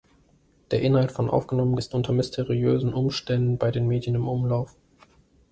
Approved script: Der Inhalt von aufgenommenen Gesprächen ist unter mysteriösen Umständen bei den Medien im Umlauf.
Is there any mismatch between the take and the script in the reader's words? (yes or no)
yes